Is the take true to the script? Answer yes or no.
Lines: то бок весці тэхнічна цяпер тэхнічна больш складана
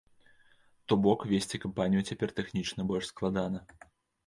no